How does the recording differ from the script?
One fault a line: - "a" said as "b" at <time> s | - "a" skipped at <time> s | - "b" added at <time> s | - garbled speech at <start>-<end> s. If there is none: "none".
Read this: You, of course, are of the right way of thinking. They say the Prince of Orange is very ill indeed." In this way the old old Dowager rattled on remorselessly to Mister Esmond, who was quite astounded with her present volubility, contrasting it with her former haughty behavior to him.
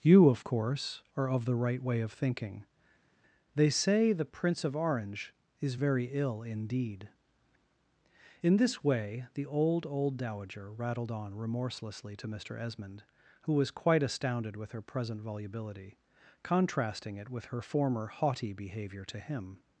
none